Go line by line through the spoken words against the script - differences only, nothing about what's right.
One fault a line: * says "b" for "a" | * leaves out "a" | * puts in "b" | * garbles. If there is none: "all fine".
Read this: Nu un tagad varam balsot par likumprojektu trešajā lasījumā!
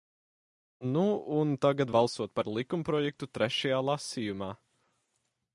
* leaves out "varam"